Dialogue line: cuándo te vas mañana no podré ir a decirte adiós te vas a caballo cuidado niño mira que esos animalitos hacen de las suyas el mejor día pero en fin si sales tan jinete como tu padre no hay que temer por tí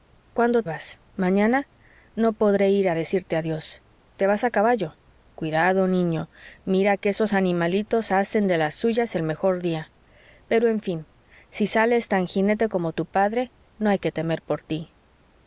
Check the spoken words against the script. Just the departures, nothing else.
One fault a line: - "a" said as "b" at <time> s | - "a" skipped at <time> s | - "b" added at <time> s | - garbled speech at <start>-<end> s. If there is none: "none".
- "te" skipped at 0.6 s